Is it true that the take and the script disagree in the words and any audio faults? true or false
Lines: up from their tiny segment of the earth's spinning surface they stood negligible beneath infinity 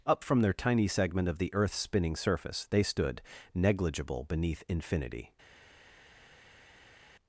false